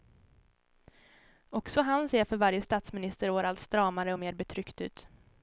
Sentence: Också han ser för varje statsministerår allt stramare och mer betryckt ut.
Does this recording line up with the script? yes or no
yes